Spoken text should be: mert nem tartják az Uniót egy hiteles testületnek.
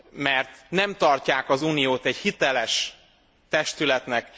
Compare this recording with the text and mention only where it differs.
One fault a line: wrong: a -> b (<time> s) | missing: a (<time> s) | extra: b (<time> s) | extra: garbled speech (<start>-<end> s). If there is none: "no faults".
no faults